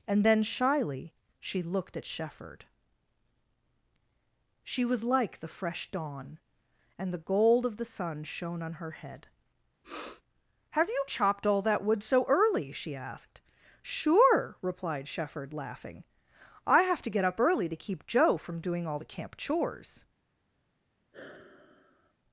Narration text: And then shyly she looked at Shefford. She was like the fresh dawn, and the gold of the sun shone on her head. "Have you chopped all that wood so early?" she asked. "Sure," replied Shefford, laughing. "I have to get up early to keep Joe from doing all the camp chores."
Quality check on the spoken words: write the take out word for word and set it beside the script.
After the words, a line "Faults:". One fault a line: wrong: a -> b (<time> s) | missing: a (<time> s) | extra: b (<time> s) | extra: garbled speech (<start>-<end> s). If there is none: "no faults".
And then shyly she looked at Shefford. She was like the fresh dawn, and the gold of the sun shone on her head. "Have you chopped all that wood so early?" she asked. "Sure," replied Shefford, laughing. "I have to get up early to keep Joe from doing all the camp chores."
Faults:
no faults